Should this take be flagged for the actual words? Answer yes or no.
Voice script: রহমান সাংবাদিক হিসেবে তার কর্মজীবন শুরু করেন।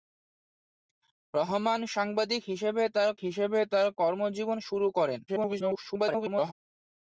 yes